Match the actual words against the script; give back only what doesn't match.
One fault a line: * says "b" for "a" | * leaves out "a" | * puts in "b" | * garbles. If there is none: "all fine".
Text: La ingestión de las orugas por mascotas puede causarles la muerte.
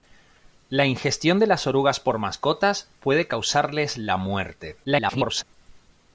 * garbles